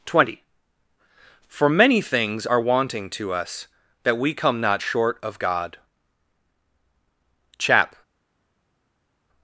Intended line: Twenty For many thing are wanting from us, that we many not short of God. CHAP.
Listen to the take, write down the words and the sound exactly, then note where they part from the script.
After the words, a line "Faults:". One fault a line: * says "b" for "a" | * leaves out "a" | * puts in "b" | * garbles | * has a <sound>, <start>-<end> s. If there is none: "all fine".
Twenty For many things are wanting to us, that we come not short of God. CHAP.
Faults:
* says "things" for "thing"
* says "to" for "from"
* says "come" for "many"